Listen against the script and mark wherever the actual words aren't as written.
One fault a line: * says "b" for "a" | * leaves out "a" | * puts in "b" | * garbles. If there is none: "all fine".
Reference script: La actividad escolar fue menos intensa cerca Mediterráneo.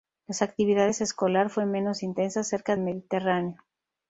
all fine